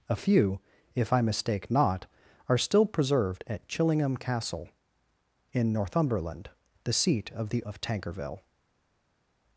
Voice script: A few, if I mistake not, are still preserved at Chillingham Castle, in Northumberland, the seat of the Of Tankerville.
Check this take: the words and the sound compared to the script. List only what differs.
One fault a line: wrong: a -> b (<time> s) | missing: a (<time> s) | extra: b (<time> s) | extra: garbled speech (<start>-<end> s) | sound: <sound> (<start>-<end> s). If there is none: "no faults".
no faults